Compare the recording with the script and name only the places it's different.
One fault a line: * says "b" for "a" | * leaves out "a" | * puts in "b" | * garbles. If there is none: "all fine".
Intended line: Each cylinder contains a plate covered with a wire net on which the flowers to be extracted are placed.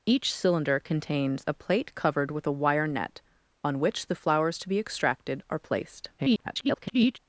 * garbles